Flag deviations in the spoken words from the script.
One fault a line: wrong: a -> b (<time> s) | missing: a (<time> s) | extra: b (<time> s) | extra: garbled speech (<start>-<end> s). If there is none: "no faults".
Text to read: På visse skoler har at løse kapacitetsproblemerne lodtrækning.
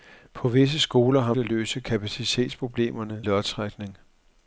no faults